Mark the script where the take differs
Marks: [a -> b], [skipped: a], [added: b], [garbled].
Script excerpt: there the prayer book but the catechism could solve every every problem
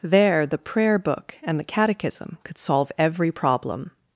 there the prayer book [but -> and] the catechism could solve every [skipped: every] problem